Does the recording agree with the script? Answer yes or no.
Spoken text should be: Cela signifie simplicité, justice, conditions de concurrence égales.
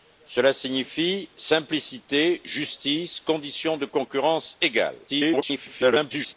no